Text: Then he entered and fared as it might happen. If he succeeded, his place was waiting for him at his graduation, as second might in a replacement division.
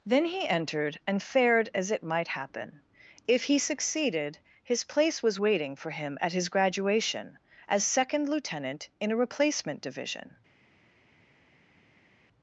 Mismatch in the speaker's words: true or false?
true